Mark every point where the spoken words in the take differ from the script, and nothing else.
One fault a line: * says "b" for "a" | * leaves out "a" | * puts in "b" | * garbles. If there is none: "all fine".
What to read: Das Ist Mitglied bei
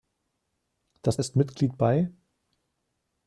all fine